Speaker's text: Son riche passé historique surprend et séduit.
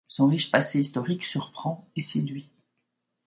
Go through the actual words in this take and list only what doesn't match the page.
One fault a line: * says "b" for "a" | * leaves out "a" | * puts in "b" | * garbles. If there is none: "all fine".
all fine